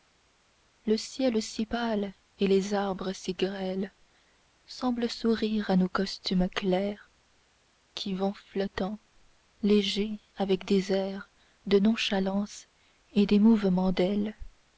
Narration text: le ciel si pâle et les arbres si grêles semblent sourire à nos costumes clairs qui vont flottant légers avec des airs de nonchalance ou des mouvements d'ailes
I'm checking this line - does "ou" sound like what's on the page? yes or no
no